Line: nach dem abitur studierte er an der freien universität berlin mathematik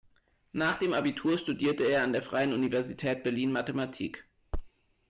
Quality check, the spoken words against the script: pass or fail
pass